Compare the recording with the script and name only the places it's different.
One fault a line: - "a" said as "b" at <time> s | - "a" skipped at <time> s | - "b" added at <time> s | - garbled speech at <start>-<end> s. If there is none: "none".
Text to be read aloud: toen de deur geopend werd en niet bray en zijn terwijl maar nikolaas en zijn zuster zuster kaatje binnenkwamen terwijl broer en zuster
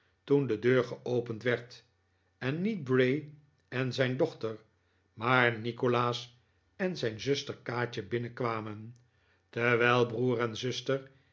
- "terwijl" said as "dochter" at 4.2 s
- "zuster" skipped at 7.6 s